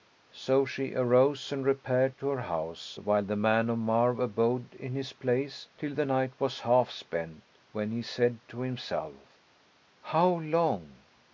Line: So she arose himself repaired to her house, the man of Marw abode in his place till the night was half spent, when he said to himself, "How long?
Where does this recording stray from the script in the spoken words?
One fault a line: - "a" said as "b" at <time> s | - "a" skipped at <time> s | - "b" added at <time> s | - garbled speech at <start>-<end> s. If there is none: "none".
- "himself" said as "and" at 1.5 s
- "while" added at 3.0 s